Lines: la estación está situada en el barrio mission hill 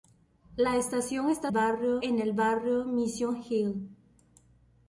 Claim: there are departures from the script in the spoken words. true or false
true